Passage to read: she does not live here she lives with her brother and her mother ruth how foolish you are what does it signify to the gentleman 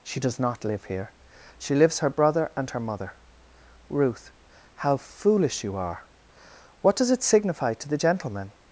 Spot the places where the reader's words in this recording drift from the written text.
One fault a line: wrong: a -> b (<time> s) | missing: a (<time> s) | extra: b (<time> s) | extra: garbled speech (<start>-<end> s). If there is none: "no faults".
missing: with (2.0 s)